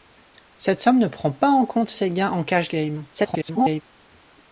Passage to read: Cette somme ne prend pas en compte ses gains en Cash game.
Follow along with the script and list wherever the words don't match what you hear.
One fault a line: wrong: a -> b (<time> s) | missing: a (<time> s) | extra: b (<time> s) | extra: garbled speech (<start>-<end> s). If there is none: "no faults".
extra: garbled speech (3.1-3.8 s)